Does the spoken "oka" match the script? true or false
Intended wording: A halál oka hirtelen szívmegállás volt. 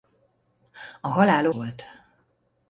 false